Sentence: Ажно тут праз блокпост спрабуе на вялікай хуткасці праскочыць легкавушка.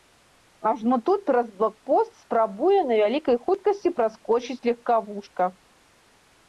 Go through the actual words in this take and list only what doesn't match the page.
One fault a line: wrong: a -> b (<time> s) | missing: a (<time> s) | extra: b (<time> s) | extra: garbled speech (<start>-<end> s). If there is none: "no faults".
no faults